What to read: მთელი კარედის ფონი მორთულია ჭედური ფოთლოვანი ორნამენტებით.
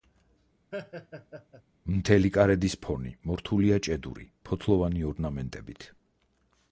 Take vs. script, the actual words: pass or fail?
pass